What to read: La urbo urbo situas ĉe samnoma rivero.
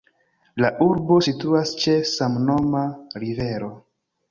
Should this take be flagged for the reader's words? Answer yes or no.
yes